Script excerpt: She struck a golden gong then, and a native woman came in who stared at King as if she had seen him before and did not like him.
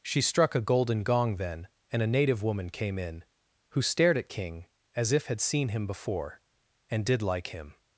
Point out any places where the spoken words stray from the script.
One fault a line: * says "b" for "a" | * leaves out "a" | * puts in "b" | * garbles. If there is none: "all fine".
* leaves out "she"
* leaves out "not"